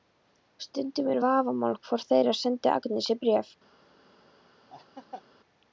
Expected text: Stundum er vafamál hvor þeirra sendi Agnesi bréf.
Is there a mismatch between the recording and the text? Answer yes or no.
no